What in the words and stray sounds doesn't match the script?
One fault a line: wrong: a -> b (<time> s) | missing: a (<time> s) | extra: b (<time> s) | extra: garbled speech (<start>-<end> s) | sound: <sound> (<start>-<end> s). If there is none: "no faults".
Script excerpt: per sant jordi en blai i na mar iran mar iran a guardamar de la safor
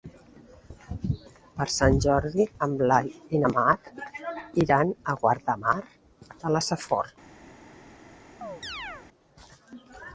missing: mar iran (4.9 s)
sound: chirp (8.4-9.1 s)